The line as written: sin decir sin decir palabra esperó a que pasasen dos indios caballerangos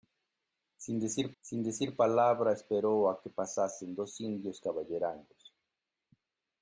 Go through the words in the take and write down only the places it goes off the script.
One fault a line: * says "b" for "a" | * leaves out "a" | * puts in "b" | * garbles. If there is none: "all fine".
all fine